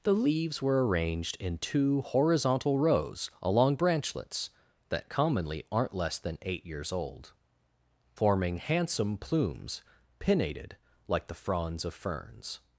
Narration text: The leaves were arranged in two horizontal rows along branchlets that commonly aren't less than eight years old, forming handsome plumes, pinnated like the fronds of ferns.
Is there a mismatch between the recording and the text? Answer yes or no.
no